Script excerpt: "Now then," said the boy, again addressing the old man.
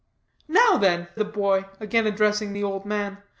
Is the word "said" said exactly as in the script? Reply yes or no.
no